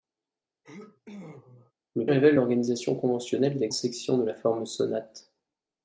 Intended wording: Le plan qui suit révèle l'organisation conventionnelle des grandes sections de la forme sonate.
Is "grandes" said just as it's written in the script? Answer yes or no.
no